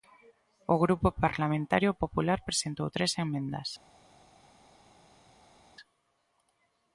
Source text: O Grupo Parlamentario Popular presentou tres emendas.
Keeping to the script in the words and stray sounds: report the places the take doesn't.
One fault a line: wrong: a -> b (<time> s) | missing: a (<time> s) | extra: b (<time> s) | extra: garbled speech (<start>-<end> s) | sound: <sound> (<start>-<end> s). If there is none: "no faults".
no faults